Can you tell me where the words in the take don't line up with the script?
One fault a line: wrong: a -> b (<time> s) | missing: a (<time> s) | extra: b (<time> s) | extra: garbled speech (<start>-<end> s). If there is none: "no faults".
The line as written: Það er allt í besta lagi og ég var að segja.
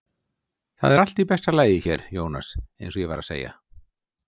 extra: hér Jónas eins (1.9 s)